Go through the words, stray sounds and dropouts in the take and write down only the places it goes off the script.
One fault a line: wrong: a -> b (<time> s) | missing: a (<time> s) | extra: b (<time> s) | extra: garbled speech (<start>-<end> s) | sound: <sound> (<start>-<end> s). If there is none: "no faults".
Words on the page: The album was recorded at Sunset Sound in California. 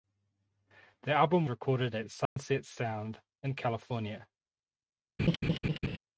missing: was (1.5 s)
sound: dropout (2.3-2.4 s)
sound: laugh (5.2-6.0 s)